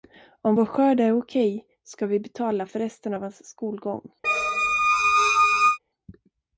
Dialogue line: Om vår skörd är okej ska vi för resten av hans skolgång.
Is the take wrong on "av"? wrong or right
right